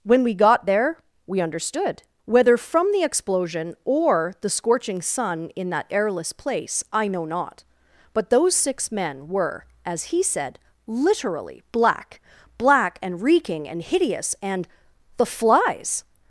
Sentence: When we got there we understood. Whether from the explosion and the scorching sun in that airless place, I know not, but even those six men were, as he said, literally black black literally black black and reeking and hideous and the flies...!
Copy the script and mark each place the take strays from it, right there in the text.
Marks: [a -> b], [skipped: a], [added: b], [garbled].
When we got there we understood. Whether from the explosion [and -> or] the scorching sun in that airless place, I know not, but [skipped: even] those six men were, as he said, literally black black [skipped: literally black black] and reeking and hideous and the flies...!